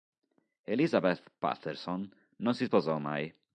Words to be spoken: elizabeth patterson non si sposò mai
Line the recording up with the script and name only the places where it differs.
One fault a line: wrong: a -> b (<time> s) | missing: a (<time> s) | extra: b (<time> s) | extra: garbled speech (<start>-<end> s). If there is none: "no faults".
no faults